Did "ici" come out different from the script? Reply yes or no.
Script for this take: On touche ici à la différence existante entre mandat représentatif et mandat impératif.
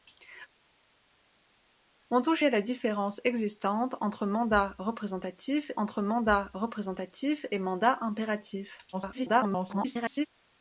yes